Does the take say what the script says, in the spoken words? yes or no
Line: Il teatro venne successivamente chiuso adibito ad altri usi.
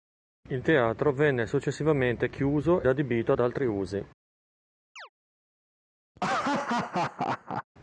yes